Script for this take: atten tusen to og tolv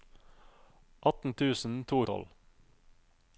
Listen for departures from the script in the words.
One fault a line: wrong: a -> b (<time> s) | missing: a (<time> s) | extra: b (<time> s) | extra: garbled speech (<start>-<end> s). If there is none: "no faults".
no faults